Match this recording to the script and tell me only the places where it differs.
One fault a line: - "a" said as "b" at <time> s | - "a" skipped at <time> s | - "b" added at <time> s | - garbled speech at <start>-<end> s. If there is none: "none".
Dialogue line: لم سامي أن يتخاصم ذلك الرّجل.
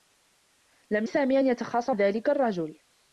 none